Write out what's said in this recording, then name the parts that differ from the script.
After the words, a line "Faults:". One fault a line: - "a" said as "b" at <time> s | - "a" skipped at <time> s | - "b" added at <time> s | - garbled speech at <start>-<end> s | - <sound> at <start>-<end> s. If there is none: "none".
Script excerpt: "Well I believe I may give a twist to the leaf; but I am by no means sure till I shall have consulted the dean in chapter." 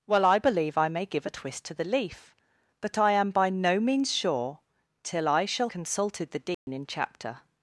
"Well I believe I may give a twist to the leaf; but I am by no means sure till I shall consulted the dean in chapter."
Faults:
- "have" skipped at 5.7 s
- dropout at 6.5-6.7 s